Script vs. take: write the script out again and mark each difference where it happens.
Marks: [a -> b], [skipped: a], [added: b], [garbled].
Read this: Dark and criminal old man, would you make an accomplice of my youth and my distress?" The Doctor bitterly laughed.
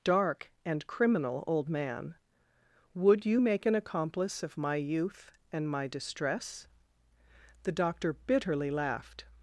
Dark and criminal old man, would you make an accomplice of my youth and my distress?" The Doctor bitterly laughed.